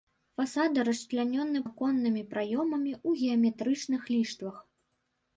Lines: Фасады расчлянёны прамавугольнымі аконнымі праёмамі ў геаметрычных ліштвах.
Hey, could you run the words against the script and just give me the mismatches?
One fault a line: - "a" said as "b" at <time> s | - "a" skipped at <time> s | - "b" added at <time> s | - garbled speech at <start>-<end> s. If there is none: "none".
- "прамавугольнымі" skipped at 1.6 s